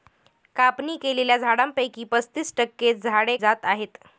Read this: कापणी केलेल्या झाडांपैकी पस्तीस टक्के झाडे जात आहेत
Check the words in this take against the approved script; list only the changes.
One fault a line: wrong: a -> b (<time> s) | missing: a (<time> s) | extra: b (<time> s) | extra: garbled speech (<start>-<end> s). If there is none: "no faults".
no faults